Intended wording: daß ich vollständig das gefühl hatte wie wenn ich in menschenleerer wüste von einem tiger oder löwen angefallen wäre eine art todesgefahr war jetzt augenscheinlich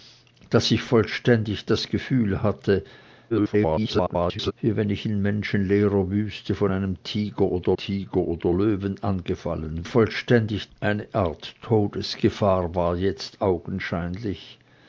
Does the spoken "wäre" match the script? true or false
false